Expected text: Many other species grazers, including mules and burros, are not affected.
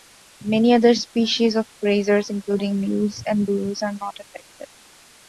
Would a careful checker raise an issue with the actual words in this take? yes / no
yes